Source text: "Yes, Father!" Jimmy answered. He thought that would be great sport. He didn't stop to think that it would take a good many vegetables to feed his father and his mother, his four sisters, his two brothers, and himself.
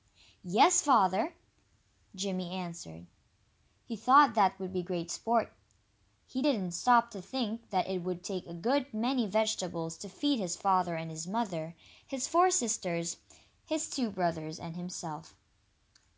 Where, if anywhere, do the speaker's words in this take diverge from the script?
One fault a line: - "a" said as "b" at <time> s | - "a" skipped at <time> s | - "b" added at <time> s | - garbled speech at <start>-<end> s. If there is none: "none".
none